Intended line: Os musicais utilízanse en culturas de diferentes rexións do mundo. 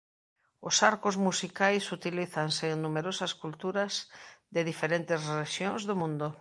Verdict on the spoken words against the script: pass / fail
fail